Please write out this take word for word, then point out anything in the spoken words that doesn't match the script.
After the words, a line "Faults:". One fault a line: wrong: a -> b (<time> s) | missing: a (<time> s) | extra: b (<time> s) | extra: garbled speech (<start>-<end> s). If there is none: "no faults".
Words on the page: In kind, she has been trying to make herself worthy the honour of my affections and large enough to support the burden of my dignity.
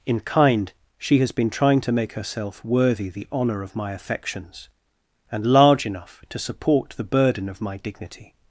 In kind, she has been trying to make herself worthy the honour of my affections and large enough to support the burden of my dignity.
Faults:
no faults